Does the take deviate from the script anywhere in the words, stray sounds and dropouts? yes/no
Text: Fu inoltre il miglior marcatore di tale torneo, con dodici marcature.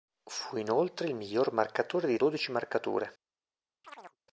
yes